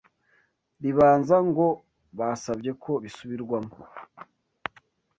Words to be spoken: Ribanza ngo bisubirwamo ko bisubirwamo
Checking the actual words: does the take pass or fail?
fail